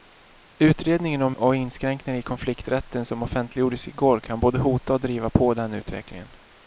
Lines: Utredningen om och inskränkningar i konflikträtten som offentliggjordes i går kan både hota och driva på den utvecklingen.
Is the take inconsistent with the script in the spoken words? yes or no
no